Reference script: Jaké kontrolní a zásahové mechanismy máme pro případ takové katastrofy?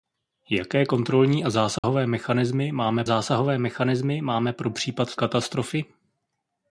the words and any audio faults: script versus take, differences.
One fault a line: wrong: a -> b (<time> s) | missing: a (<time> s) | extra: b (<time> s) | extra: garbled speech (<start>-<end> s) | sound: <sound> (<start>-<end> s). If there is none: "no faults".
sound: dropout (1.8-1.8 s)
extra: zásahové mechanismy máme (3.0 s)
missing: takové (5.2 s)